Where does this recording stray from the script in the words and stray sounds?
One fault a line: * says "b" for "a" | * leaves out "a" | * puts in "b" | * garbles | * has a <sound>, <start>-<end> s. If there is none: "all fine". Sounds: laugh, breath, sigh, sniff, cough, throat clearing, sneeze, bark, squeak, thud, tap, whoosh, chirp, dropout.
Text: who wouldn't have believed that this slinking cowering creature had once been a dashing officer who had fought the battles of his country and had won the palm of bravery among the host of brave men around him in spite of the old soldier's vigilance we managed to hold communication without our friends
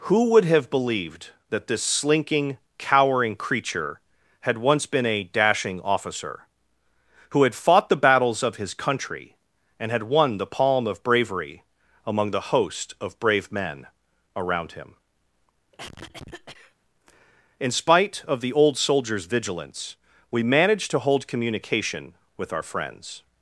* says "would" for "wouldn't"
* has a cough, 15.7-16.7 s
* says "with" for "without"